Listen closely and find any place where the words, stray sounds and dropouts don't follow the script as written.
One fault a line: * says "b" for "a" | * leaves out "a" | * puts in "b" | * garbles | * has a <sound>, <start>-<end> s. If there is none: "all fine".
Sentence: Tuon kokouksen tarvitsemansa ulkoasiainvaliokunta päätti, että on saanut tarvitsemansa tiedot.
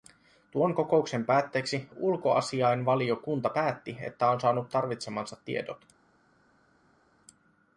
* says "päätteeksi" for "tarvitsemansa"